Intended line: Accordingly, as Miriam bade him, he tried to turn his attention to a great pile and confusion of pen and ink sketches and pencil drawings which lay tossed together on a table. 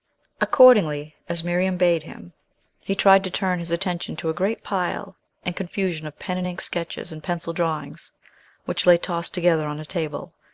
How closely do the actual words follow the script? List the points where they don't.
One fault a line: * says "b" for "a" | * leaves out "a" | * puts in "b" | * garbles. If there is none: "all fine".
all fine